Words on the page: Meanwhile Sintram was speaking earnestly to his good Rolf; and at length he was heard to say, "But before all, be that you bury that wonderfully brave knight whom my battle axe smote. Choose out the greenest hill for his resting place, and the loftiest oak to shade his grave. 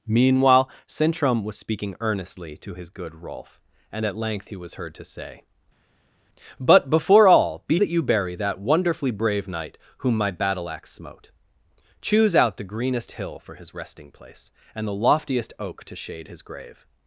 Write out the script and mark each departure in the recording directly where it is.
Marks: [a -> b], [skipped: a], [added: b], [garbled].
Meanwhile Sintram was speaking earnestly to his good Rolf; and at length he was heard to say, "But before all, be that you bury that wonderfully brave knight whom my battle axe smote. Choose out the greenest hill for his resting place, and the loftiest oak to shade his grave.